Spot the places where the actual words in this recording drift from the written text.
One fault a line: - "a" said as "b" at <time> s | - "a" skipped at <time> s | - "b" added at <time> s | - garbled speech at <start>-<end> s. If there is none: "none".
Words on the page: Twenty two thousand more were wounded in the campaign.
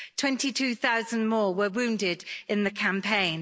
none